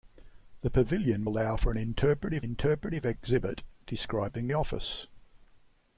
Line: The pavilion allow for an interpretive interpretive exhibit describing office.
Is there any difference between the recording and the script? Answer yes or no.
no